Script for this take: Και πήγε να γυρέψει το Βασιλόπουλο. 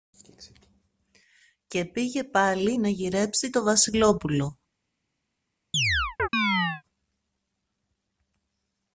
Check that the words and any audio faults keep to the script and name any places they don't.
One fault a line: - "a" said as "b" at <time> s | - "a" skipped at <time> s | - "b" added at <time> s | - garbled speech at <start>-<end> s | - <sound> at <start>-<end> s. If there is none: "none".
- "πάλι" added at 2.2 s
- chirp at 5.7-6.8 s